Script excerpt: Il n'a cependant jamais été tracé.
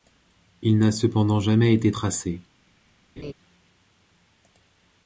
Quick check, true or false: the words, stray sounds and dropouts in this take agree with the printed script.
false